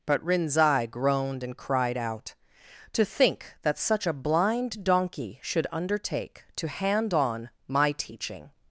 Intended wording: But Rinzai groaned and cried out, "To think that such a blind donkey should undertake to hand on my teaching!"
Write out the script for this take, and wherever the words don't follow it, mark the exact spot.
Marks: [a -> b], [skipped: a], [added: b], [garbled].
But Rinzai groaned and cried out, "To think that such a blind donkey should undertake to hand on my teaching!"